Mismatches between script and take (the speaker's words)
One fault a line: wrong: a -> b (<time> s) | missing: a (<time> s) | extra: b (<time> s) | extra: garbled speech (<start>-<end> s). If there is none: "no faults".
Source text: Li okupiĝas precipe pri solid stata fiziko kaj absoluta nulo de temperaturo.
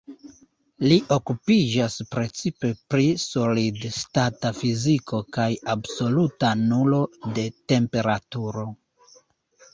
no faults